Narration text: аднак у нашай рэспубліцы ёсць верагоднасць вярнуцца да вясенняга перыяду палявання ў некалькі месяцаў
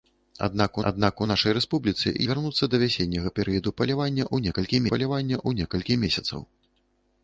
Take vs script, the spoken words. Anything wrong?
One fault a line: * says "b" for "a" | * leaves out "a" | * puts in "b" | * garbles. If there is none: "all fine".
* puts in "аднак"
* leaves out "ёсць верагоднасць"
* puts in "палявання ў некалькі"